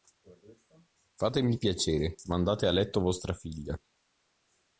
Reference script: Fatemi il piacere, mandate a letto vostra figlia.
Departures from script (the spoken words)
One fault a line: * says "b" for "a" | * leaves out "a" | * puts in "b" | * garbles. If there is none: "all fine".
all fine